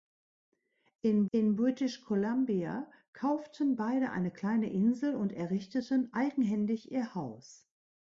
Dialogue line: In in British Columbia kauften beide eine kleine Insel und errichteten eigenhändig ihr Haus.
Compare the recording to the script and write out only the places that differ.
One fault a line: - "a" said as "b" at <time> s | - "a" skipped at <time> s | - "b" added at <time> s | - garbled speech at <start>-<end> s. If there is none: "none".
none